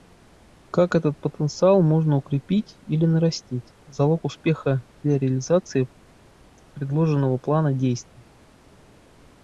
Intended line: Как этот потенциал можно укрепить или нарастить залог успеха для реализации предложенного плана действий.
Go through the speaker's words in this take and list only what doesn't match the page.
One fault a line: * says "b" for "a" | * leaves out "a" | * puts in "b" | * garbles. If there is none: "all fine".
all fine